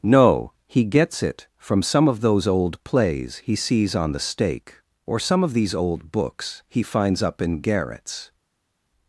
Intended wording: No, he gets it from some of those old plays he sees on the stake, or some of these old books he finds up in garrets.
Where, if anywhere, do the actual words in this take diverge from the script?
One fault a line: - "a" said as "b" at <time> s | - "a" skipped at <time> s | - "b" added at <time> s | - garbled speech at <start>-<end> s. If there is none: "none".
none